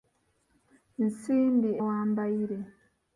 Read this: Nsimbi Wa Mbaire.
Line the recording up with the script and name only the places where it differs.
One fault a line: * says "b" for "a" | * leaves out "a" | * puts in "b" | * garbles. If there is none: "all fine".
all fine